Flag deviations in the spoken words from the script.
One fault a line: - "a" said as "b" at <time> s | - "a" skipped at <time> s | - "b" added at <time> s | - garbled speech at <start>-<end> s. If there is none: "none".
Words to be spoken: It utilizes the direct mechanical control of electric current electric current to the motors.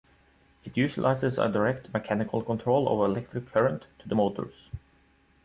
- "the" said as "a" at 1.4 s
- "electric current" skipped at 3.8 s